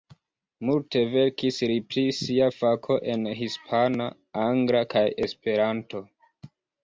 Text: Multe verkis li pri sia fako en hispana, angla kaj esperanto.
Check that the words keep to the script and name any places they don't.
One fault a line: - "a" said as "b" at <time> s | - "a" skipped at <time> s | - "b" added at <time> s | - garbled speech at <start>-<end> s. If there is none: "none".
none